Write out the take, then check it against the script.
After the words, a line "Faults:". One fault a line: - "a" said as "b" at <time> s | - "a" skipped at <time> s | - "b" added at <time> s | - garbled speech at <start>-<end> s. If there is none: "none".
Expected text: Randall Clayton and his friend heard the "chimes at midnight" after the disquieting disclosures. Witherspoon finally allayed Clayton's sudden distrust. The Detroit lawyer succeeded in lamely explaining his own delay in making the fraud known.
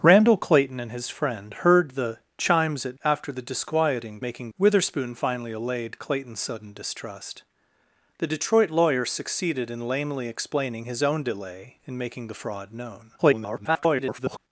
Randall Clayton and his friend heard the "chimes at" after the disquieting making. Witherspoon finally allayed Clayton's sudden distrust. The Detroit lawyer succeeded in lamely explaining his own delay in making the fraud known. [garbled]
Faults:
- "midnight" skipped at 3.0 s
- "disclosures" said as "making" at 4.2 s
- garbled speech at 13.2-14.4 s